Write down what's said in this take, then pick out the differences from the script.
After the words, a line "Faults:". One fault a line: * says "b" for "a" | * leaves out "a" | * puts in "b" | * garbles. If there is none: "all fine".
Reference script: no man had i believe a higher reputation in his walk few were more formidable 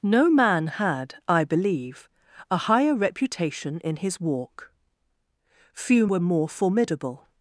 no man had i believe a higher reputation in his walk few were more formidable
Faults:
all fine